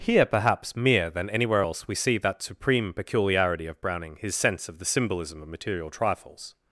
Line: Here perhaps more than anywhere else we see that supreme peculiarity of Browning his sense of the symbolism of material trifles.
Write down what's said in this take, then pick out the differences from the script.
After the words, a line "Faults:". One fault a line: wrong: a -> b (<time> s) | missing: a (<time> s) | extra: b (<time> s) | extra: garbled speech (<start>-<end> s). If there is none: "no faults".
Here perhaps mere than anywhere else we see that supreme peculiarity of Browning his sense of the symbolism of material trifles.
Faults:
wrong: more -> mere (0.8 s)